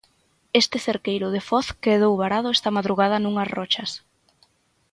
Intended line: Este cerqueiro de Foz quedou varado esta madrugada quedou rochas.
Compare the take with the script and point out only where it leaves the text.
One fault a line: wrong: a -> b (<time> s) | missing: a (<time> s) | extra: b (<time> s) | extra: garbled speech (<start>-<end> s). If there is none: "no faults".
wrong: quedou -> nunhas (3.2 s)